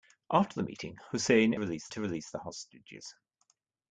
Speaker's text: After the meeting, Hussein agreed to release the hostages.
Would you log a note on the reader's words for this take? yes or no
yes